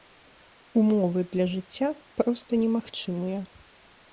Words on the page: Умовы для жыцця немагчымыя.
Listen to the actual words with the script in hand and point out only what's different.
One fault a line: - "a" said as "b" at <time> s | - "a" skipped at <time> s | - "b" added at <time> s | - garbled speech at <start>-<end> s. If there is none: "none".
- "проста" added at 2.2 s